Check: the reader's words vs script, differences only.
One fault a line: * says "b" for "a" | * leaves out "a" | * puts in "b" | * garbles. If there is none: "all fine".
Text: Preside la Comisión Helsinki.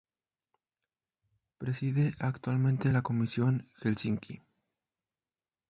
* puts in "actualmente"